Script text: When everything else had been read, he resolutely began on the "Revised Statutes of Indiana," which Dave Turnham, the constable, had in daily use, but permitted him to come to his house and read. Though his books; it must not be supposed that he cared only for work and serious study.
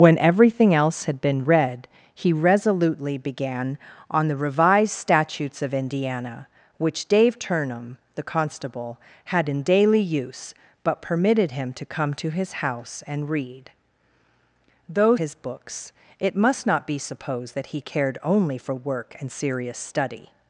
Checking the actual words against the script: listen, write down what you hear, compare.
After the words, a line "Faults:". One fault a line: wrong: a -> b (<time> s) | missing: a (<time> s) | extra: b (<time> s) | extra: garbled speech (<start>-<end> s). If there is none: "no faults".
When everything else had been read, he resolutely began on the "Revised Statutes of Indiana," which Dave Turnham, the constable, had in daily use, but permitted him to come to his house and read. Though his books; it must not be supposed that he cared only for work and serious study.
Faults:
no faults